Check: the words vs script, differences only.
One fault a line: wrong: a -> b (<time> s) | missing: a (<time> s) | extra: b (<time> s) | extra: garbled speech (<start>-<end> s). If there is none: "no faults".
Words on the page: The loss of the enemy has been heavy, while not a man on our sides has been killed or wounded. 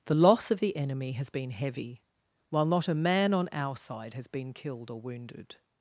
wrong: sides -> side (3.7 s)